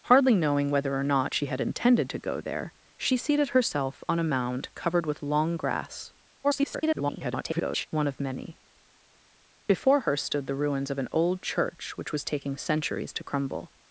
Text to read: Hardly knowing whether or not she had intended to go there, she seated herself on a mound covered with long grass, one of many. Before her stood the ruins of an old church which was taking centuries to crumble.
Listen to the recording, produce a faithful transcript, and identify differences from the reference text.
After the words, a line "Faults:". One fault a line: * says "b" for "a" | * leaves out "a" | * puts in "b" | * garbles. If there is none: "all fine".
Hardly knowing whether or not she had intended to go there, she seated herself on a mound covered with long grass, [garbled] one of many. Before her stood the ruins of an old church which was taking centuries to crumble.
Faults:
* garbles